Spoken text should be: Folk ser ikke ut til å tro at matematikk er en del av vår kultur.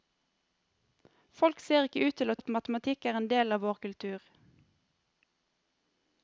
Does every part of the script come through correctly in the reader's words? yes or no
no